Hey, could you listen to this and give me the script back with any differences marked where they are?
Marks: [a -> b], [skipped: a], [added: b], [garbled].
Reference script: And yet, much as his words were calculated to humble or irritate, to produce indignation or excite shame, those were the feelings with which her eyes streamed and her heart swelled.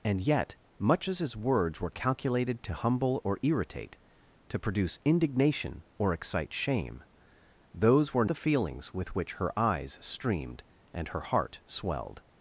And yet, much as his words were calculated to humble or irritate, to produce indignation or excite shame, those were the feelings with which her eyes streamed and her heart swelled.